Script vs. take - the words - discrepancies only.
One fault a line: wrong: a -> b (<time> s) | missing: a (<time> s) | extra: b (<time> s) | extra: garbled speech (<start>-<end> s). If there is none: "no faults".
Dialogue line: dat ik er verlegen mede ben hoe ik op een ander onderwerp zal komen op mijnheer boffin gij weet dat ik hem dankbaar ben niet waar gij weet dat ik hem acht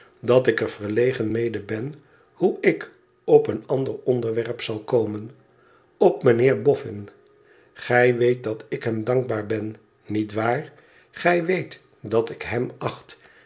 no faults